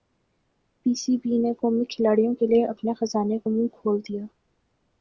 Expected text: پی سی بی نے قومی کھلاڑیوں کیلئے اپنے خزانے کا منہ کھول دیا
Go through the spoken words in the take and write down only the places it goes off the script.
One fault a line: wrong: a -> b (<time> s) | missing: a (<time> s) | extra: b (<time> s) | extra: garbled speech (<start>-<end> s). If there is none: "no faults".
no faults